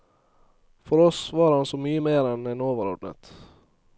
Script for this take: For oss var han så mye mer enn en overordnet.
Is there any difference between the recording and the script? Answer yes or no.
no